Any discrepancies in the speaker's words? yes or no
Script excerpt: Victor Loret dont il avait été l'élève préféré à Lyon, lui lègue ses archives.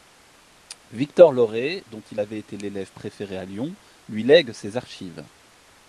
no